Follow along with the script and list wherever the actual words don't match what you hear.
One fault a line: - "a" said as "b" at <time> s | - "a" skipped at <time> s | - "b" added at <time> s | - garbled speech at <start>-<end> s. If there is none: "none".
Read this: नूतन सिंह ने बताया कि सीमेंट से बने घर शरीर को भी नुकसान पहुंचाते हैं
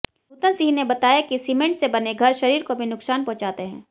none